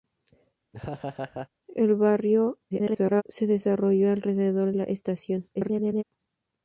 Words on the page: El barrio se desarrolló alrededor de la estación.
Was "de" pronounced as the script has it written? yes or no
no